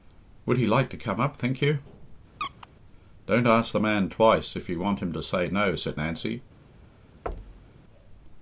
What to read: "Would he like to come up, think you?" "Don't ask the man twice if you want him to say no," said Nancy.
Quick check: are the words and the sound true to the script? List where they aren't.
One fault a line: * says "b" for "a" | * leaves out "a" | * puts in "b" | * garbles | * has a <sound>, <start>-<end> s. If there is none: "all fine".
* has a squeak, 2.4-2.7 s
* has a thud, 7.3-7.8 s